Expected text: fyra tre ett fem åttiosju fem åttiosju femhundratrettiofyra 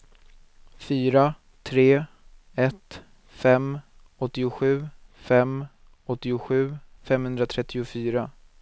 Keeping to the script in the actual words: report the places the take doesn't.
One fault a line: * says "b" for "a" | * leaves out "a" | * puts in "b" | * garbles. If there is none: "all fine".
all fine